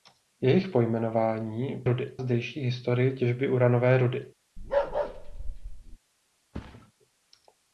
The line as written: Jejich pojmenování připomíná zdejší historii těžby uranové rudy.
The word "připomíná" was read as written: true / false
false